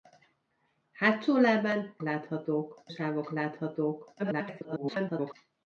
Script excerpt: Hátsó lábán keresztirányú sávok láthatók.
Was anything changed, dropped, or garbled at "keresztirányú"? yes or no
yes